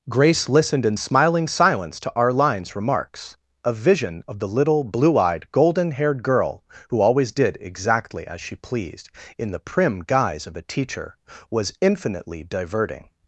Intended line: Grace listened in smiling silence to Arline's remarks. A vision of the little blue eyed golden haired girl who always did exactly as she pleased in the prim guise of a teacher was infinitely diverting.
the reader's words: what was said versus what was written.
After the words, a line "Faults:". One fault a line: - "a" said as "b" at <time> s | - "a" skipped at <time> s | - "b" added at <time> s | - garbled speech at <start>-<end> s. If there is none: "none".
Grace listened in smiling silence to Arline's remarks. A vision of the little blue eyed golden haired girl who always did exactly as she pleased in the prim guise of a teacher was infinitely diverting.
Faults:
none